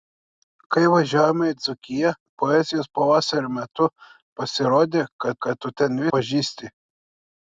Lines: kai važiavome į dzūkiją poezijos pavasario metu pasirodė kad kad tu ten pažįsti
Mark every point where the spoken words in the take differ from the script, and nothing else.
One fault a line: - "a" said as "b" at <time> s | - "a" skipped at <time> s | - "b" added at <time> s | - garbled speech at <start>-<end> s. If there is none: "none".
none